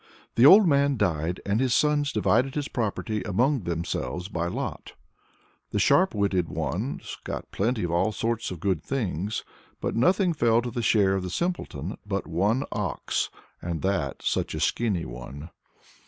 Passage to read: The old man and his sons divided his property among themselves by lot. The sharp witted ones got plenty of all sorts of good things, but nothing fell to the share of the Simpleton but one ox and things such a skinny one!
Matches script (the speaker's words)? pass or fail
fail